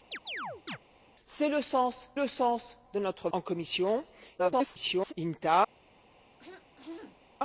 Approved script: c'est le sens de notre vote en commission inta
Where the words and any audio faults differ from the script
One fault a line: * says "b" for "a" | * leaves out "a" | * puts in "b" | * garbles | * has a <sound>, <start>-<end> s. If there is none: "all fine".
* has a chirp, 0.1-0.8 s
* puts in "le sens"
* leaves out "vote"
* garbles
* has a throat clearing, 6.4-7.2 s